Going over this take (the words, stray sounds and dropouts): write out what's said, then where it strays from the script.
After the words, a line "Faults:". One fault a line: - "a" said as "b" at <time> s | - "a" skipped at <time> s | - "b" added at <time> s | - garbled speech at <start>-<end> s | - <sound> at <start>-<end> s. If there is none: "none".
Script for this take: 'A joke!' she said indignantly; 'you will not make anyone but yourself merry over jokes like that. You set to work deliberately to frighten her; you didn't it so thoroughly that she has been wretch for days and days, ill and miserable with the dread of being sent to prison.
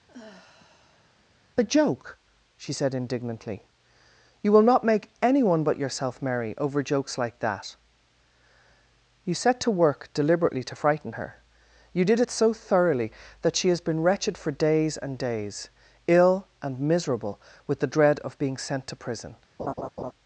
'A joke!' she said indignantly; 'you will not make anyone but yourself merry over jokes like that. You set to work deliberately to frighten her; you did it so thoroughly that she has been wretched for days and days, ill and miserable with the dread of being sent to prison.
Faults:
- sigh at 0.1-1.2 s
- "didn't" said as "did" at 12.1 s
- "wretch" said as "wretched" at 14.0 s
- laugh at 19.6-20.1 s